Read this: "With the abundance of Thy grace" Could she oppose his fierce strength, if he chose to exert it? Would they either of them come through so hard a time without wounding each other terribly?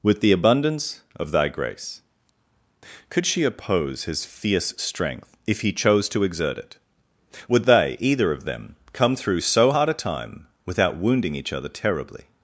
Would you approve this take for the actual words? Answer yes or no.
yes